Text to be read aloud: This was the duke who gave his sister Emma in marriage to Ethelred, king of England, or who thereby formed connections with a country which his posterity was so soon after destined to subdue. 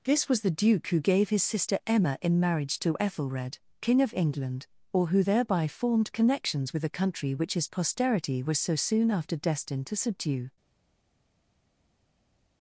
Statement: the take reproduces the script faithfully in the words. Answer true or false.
true